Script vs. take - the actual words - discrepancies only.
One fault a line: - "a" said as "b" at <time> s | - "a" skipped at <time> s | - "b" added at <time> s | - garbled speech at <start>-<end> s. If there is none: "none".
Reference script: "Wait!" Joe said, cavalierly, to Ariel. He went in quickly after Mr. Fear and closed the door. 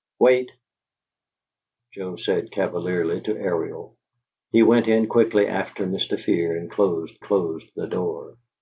- "closed" added at 7.2 s